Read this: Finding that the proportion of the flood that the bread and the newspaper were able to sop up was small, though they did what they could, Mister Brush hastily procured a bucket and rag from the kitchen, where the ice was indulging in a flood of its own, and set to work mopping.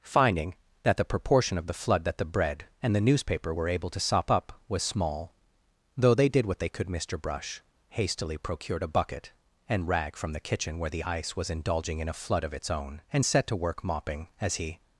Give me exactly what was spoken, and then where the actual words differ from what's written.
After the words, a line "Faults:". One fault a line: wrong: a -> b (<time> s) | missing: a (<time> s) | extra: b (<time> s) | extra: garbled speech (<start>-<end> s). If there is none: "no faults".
Finding that the proportion of the flood that the bread and the newspaper were able to sop up was small, though they did what they could, Mister Brush hastily procured a bucket and rag from the kitchen, where the ice was indulging in a flood of its own, and set to work mopping. As he
Faults:
extra: As he (14.4 s)